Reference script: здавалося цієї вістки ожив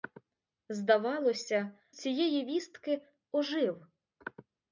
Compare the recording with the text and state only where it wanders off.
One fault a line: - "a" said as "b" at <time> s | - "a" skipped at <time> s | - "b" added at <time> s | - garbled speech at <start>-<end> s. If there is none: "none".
none